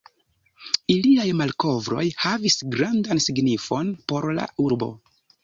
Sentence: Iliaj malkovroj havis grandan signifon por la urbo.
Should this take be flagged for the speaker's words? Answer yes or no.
no